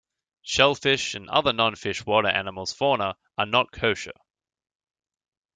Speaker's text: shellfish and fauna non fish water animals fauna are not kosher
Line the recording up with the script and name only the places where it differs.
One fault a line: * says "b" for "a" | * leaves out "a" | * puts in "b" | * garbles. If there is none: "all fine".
* says "other" for "fauna"